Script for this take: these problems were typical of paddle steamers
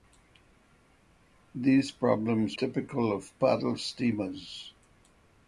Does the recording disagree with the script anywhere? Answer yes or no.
yes